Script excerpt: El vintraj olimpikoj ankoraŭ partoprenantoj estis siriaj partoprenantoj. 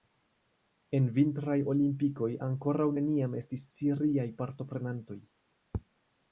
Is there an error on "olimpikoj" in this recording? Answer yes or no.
no